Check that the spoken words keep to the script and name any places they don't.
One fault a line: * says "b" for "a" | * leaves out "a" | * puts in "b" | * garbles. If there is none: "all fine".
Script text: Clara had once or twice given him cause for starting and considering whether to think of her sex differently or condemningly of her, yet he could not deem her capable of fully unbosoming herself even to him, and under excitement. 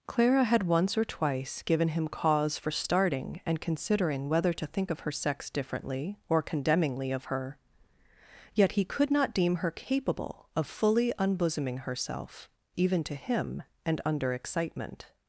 all fine